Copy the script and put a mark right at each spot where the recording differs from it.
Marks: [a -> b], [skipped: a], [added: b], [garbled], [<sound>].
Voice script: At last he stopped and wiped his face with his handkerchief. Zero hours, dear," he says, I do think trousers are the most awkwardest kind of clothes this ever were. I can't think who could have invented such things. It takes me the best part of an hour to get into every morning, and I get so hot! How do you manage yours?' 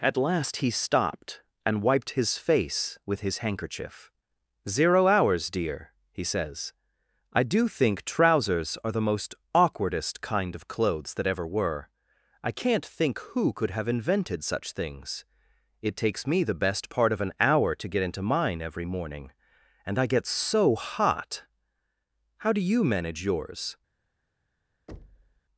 At last he stopped and wiped his face with his handkerchief. Zero hours, dear," he says, I do think trousers are the most awkwardest kind of clothes [this -> that] ever were. I can't think who could have invented such things. It takes me the best part of an hour to get into [added: mine] every morning, and I get so hot! How do you manage yours?' [thud]